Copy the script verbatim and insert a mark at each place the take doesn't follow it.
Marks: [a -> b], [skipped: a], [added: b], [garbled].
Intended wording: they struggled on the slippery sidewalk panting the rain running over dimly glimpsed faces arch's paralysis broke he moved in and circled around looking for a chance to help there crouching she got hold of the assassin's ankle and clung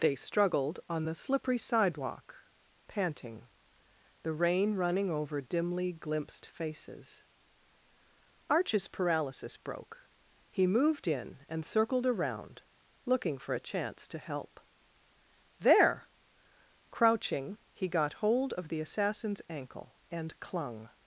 they struggled on the slippery sidewalk panting the rain running over dimly glimpsed faces arch's paralysis broke he moved in and circled around looking for a chance to help there crouching [she -> he] got hold of the assassin's ankle and clung